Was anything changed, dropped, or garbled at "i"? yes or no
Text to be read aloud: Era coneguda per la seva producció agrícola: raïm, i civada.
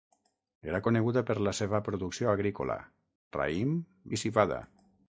no